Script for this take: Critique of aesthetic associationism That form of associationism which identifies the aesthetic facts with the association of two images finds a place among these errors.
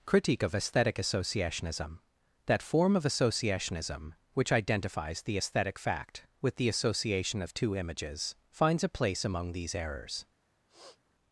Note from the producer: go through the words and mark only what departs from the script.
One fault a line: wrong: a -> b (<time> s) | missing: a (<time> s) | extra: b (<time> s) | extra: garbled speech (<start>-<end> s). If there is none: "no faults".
wrong: facts -> fact (5.8 s)